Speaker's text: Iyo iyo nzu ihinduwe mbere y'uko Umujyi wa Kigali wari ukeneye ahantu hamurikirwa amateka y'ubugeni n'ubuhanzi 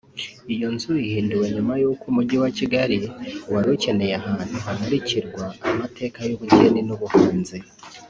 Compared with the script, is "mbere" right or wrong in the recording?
wrong